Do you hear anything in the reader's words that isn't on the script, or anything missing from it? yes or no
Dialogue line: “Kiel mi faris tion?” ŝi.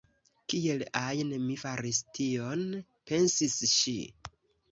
yes